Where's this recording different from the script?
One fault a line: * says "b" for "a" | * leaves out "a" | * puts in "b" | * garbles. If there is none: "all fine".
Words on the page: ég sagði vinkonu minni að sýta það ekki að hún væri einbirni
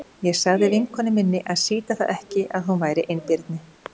all fine